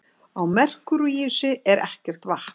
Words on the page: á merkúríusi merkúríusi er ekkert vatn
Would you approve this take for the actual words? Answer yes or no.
no